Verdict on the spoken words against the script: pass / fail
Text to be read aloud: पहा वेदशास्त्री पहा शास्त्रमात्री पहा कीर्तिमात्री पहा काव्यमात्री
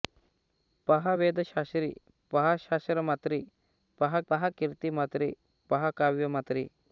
fail